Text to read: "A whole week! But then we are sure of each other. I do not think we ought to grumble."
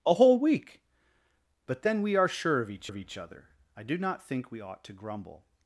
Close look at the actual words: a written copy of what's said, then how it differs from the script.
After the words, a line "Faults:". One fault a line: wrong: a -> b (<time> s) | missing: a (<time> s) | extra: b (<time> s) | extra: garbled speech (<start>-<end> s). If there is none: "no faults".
"A whole week! But then we are sure of each of each other. I do not think we ought to grumble."
Faults:
extra: of each (2.9 s)